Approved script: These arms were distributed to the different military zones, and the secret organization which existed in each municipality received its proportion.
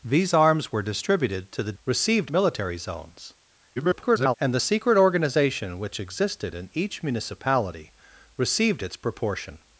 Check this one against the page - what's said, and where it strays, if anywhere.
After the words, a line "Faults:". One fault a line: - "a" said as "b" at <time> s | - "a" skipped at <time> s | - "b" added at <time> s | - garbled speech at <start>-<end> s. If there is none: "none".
These arms were distributed to the received military zones, [garbled] and the secret organization which existed in each municipality received its proportion.
Faults:
- "different" said as "received" at 1.8 s
- garbled speech at 3.8-4.4 s